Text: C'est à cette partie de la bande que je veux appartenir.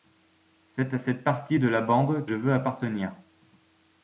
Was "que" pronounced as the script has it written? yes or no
no